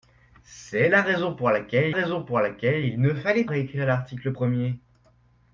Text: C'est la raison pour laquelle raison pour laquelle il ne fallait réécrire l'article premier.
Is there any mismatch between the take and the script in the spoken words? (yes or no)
no